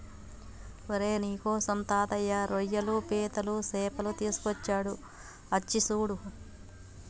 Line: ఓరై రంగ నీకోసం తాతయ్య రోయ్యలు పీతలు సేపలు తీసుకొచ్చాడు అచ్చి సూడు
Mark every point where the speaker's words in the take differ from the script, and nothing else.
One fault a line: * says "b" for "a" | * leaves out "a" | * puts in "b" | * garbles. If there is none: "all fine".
* leaves out "రంగ"